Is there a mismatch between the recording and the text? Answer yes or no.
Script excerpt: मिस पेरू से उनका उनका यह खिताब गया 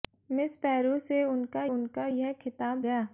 no